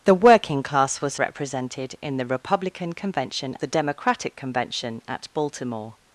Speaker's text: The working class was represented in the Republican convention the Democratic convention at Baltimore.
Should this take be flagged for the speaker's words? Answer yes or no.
no